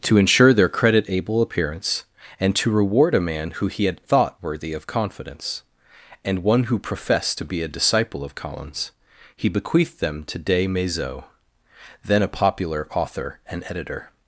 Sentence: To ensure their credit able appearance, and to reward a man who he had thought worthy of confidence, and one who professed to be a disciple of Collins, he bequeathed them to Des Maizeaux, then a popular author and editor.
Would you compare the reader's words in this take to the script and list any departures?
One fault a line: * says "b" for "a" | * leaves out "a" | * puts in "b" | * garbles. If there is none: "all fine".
all fine